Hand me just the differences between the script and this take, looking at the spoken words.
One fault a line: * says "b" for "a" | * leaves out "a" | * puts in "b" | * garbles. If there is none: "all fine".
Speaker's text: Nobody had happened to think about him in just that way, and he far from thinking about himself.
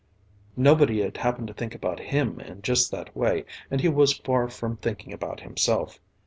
* puts in "was"